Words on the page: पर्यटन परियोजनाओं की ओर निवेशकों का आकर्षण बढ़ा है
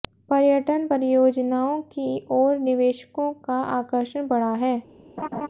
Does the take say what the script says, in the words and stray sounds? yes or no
no